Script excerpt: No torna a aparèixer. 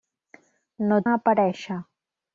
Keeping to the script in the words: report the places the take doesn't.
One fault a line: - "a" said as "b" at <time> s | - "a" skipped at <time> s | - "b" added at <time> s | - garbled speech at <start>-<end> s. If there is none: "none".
- "torna" skipped at 1.0 s